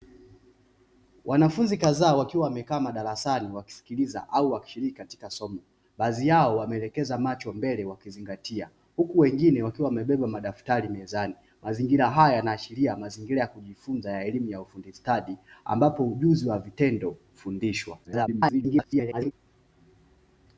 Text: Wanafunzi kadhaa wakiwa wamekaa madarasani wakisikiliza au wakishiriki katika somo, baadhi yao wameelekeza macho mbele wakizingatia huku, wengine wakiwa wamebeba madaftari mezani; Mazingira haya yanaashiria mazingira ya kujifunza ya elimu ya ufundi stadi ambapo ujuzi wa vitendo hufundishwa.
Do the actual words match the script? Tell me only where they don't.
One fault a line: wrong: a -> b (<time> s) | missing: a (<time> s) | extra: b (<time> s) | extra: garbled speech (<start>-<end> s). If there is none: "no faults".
extra: garbled speech (18.0-19.3 s)